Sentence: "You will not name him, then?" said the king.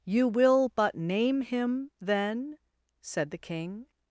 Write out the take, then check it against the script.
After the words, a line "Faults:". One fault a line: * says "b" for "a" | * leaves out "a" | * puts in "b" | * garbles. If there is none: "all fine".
"You will but name him, then?" said the king.
Faults:
* says "but" for "not"